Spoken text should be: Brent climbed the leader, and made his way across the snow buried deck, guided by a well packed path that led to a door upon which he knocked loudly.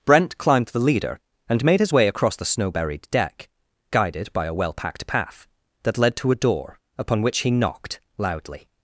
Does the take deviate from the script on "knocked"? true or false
false